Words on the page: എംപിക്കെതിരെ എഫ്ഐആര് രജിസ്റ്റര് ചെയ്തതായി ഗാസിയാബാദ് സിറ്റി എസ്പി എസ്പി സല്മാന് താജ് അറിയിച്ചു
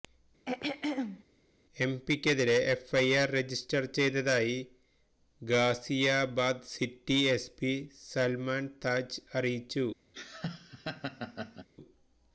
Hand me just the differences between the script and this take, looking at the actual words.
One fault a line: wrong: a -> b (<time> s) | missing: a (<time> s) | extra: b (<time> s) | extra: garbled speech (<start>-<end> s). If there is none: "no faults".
missing: എസ്പി (7.7 s)